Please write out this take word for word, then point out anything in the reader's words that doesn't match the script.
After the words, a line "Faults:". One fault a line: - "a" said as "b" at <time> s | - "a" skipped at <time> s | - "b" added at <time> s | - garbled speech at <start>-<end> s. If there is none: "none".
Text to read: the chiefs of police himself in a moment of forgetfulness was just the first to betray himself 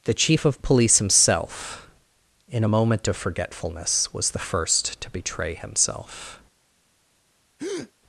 the chief of police himself in a moment of forgetfulness was the first to betray himself
Faults:
- "chiefs" said as "chief" at 0.1 s
- "just" skipped at 4.3 s